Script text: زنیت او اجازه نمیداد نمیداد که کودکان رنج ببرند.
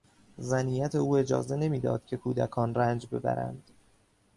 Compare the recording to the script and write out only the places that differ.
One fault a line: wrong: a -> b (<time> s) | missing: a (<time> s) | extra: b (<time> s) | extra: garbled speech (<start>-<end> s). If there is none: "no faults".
missing: نمیداد (2.0 s)